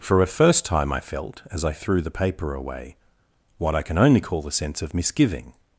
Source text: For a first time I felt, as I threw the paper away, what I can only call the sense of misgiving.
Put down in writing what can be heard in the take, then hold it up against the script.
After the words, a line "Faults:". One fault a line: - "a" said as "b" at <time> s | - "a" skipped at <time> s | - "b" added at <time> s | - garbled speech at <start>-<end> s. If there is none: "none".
For a first time I felt, as I threw the paper away, what I can only call the sense of misgiving.
Faults:
none